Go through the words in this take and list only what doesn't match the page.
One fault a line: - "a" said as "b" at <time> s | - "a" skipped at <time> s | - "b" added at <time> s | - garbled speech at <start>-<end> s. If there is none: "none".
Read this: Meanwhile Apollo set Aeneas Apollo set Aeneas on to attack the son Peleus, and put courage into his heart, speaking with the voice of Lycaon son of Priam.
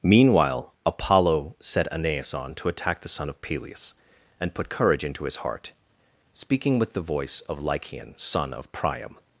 - "Apollo set Aeneas" skipped at 2.3 s
- "of" added at 3.3 s